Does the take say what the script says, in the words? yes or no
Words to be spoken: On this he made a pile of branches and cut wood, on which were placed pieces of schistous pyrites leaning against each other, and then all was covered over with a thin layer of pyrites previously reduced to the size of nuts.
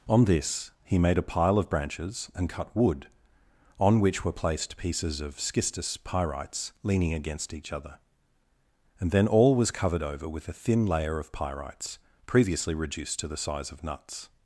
yes